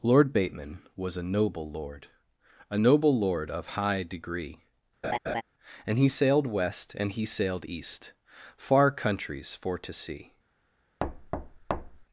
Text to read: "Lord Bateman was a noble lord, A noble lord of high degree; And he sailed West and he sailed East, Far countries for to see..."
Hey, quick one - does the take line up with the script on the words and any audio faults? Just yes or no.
no